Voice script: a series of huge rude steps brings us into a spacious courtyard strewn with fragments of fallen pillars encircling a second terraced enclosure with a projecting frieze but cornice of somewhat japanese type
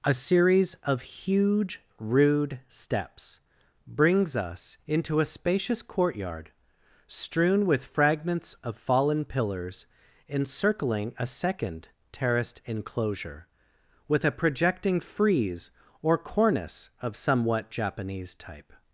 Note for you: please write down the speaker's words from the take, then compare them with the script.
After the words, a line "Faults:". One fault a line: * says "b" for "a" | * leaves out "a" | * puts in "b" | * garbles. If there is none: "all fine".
a series of huge rude steps brings us into a spacious courtyard strewn with fragments of fallen pillars encircling a second terraced enclosure with a projecting frieze or cornice of somewhat japanese type
Faults:
* says "or" for "but"